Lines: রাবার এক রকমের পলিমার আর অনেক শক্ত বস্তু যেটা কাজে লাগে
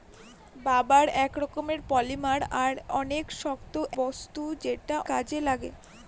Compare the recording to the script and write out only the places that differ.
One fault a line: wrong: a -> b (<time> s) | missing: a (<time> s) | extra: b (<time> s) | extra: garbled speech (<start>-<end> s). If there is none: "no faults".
no faults